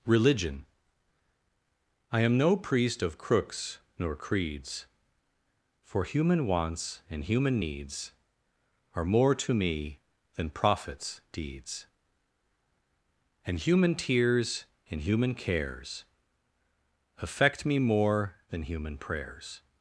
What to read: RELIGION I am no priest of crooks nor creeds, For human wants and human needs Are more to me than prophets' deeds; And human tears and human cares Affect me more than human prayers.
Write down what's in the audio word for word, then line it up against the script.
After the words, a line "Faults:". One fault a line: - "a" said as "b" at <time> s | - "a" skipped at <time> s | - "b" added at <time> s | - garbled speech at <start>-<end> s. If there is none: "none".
RELIGION I am no priest of crooks nor creeds, For human wants and human needs Are more to me than prophets' deeds; And human tears and human cares Affect me more than human prayers.
Faults:
none